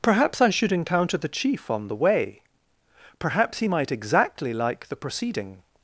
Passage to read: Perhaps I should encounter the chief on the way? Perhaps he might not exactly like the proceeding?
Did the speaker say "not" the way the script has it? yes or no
no